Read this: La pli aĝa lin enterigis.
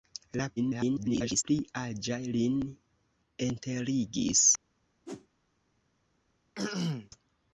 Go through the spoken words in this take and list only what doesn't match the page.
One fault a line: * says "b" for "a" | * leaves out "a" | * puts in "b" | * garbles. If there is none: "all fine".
* garbles